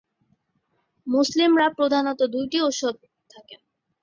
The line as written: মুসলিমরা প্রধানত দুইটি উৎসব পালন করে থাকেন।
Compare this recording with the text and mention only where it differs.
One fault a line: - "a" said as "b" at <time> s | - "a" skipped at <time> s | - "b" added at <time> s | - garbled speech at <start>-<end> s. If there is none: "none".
- "পালন করে" skipped at 3.0 s